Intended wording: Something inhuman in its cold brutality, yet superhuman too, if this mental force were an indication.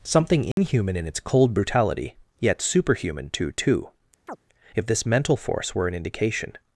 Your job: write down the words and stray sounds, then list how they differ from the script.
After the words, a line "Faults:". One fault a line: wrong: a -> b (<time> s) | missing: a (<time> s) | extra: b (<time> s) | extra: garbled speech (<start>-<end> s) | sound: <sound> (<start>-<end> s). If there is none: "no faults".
Something inhuman in its cold brutality, yet superhuman too too, if this mental force were an indication.
Faults:
sound: dropout (0.5-0.6 s)
extra: too (3.5 s)
sound: chirp (4.3-4.4 s)